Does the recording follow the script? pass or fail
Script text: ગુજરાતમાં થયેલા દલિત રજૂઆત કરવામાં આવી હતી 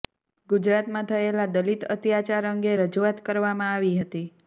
fail